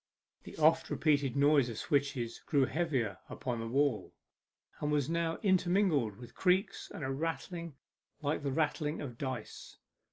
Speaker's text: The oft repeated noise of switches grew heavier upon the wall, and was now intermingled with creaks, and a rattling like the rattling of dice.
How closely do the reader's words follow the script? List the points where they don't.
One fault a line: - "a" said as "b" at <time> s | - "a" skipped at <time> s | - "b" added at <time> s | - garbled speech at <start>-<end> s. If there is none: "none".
none